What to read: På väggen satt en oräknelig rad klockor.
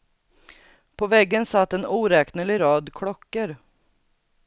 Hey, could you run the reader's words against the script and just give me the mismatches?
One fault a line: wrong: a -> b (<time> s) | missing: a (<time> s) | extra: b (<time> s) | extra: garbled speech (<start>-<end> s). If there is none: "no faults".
no faults